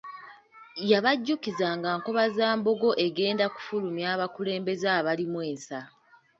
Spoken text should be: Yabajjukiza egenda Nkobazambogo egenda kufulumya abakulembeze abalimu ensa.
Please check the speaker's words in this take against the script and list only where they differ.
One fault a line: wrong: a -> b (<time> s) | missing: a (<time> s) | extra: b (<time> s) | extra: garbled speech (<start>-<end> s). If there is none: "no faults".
wrong: egenda -> nga (1.8 s)